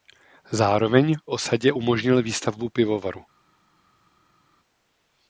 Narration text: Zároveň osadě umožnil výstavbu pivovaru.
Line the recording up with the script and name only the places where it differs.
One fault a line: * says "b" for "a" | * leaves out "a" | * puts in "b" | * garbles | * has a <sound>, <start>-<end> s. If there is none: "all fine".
all fine